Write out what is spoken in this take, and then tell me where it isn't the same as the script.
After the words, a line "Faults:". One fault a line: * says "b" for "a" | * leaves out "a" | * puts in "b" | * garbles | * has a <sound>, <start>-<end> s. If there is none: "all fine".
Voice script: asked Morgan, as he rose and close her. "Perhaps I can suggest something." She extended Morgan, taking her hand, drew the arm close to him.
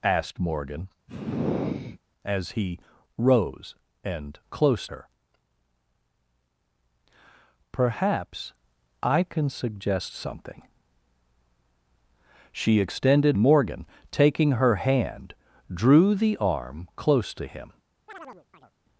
asked Morgan, as he rose and close her. "Perhaps I can suggest something." She extended Morgan, taking her hand, drew the arm close to him.
Faults:
* has a sigh, 1.1-2.0 s
* has a chirp, 18.1-18.7 s